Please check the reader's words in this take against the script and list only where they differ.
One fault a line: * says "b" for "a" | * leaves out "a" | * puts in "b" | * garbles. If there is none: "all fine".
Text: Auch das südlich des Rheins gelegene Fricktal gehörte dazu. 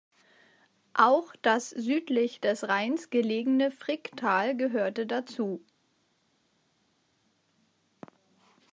all fine